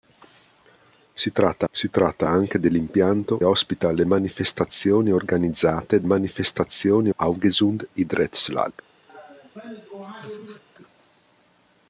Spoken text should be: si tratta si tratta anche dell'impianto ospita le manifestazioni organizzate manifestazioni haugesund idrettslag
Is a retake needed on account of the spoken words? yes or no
no